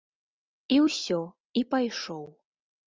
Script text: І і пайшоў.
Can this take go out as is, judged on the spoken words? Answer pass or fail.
fail